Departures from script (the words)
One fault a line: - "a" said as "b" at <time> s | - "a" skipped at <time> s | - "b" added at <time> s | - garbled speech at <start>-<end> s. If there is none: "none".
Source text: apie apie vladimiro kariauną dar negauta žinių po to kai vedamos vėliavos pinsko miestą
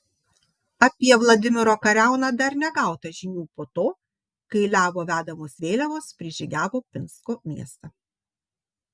- "apie" skipped at 1.1 s
- "levo" added at 4.8 s
- "prižygiavo" added at 6.2 s